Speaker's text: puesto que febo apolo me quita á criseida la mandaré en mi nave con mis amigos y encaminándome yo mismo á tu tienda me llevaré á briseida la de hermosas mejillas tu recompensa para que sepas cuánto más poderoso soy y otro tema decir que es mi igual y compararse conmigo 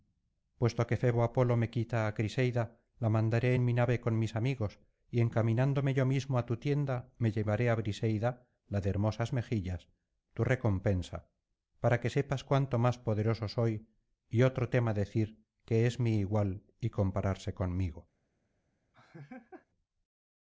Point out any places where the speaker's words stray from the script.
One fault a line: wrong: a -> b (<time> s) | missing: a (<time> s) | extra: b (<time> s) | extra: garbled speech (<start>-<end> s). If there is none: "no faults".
no faults